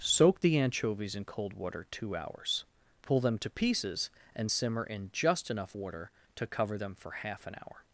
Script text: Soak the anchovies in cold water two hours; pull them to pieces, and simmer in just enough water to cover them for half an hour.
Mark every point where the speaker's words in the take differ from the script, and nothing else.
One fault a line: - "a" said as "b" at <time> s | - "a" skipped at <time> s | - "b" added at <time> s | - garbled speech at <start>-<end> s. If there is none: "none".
none